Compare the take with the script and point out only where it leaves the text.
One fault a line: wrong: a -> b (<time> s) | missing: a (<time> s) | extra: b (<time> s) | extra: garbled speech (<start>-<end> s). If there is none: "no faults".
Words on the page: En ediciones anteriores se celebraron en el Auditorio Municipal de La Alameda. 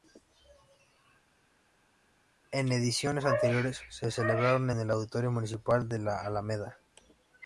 no faults